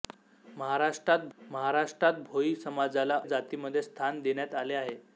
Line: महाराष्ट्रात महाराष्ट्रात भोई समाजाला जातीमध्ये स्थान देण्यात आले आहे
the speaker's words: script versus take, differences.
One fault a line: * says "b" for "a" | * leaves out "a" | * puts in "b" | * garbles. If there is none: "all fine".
all fine